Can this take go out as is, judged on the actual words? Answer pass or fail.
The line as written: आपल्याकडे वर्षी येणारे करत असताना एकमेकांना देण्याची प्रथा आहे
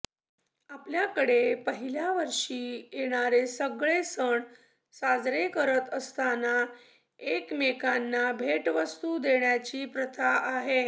fail